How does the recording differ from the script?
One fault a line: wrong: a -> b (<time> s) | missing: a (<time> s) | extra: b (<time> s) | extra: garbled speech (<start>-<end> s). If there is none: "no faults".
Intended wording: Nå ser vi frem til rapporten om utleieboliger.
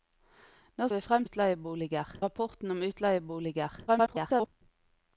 missing: ser (0.9 s)
wrong: til -> utleieboliger (1.2 s)
extra: garbled speech (3.9-4.5 s)